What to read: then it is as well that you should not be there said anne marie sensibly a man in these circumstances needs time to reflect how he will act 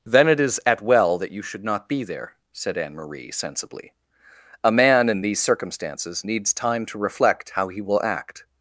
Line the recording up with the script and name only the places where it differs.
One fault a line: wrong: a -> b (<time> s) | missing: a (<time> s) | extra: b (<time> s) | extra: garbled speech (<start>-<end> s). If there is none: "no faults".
wrong: as -> at (0.7 s)